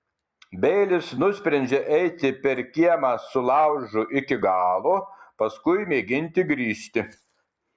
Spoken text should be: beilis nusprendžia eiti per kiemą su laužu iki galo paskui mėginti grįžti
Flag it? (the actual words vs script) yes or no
no